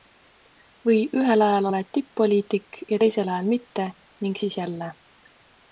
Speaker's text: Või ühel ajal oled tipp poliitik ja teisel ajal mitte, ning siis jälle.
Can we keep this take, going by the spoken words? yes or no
yes